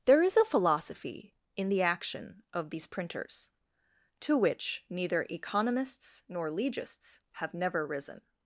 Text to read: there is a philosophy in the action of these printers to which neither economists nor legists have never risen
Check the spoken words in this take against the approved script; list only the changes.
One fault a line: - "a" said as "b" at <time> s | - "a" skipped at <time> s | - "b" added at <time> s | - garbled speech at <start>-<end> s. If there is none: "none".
none